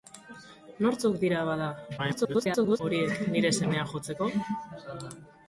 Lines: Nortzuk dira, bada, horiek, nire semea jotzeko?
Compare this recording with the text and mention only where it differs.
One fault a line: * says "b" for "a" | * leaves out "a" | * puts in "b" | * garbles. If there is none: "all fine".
* garbles